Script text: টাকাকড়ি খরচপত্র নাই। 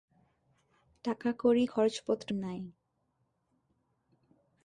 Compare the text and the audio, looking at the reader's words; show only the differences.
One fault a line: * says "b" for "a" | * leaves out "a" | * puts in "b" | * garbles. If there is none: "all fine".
all fine